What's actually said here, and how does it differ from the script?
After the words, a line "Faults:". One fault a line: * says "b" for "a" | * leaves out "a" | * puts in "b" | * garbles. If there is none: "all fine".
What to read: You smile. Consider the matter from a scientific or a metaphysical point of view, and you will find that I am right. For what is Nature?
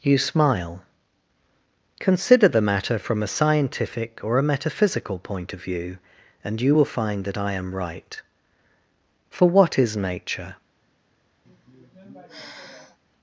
You smile. Consider the matter from a scientific or a metaphysical point of view, and you will find that I am right. For what is Nature?
Faults:
all fine